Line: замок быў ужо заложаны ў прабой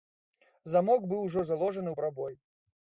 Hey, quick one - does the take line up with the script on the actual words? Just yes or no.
yes